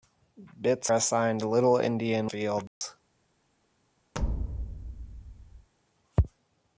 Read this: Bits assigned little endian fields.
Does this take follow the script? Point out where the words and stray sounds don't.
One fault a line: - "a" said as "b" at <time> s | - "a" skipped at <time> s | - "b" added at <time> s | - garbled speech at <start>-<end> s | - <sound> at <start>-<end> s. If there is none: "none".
- dropout at 2.7-2.8 s
- thud at 4.1-5.7 s